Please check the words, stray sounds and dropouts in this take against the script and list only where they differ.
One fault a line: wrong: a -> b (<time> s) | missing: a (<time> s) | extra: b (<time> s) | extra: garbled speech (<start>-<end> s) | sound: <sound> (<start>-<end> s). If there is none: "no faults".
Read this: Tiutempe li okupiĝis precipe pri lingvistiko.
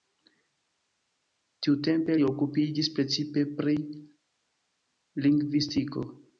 no faults